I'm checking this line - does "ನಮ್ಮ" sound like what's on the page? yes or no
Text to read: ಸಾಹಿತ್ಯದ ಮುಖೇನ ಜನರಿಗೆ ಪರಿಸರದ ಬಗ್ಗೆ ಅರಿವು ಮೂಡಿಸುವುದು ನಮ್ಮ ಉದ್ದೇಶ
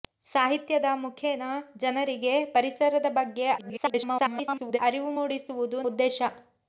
no